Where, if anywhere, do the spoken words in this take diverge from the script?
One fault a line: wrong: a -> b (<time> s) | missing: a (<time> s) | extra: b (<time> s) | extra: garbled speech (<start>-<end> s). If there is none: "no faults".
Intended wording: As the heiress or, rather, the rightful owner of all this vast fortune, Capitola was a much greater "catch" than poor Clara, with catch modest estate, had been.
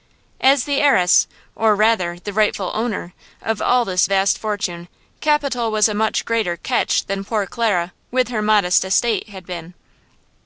wrong: catch -> her (8.3 s)